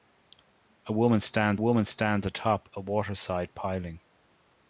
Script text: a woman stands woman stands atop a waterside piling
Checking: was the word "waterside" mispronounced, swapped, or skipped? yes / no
no